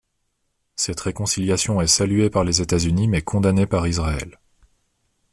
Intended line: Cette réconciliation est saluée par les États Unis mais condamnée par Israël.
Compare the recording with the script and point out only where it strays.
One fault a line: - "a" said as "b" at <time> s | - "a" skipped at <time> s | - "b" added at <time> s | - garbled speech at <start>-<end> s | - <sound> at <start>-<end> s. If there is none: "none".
none